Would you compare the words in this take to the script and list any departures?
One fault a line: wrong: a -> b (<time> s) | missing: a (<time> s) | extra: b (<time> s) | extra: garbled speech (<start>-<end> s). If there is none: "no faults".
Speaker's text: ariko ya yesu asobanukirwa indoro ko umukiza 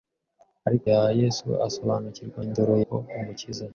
no faults